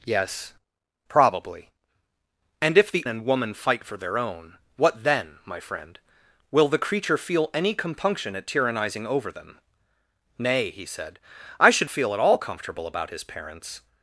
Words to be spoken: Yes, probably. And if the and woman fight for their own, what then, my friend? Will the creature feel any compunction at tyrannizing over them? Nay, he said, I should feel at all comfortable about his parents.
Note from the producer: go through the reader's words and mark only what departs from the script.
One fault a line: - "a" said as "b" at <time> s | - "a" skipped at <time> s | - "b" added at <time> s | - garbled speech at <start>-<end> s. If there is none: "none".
none